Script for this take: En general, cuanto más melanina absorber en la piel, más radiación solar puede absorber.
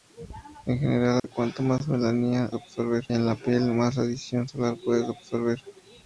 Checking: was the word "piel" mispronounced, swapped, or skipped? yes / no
no